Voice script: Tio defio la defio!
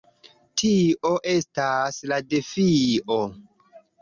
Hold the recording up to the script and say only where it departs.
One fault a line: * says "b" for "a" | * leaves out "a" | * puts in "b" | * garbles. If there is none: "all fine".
* says "estas" for "defio"